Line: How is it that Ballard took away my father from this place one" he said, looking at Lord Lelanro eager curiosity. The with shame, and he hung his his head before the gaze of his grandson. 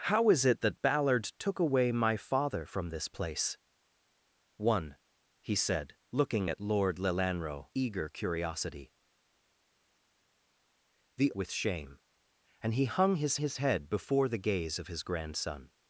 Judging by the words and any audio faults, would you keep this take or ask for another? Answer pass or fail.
pass